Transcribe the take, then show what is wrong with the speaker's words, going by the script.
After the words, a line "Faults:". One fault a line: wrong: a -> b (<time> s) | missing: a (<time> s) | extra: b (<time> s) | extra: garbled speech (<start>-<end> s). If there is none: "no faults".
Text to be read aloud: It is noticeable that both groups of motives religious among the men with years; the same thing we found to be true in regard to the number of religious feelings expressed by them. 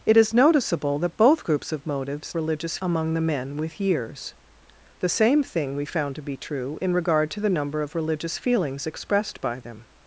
It is noticeable that both groups of motives religious among the men with years; the same thing we found to be true in regard to the number of religious feelings expressed by them.
Faults:
no faults